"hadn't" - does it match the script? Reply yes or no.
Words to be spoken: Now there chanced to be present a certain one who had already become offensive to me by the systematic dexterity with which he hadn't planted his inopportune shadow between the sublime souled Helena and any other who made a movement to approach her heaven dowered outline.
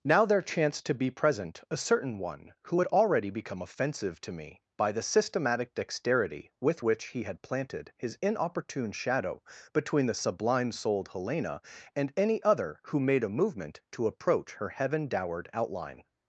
no